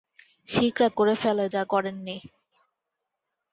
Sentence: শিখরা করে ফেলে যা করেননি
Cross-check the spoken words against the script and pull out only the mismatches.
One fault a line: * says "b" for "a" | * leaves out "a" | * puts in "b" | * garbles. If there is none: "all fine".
all fine